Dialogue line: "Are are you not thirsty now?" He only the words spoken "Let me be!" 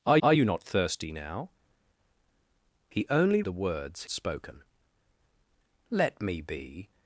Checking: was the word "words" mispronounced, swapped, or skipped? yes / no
no